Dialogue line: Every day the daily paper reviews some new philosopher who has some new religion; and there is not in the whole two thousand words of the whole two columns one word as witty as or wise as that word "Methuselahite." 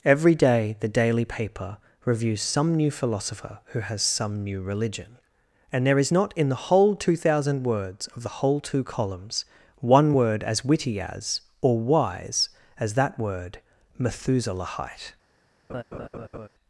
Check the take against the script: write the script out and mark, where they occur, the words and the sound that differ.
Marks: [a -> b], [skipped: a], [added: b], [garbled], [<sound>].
Every day the daily paper reviews some new philosopher who has some new religion; and there is not in the whole two thousand words of the whole two columns one word as witty as or wise as that word "Methuselahite." [laugh]